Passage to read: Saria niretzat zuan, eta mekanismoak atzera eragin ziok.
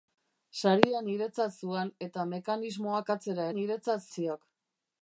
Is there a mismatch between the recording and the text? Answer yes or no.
yes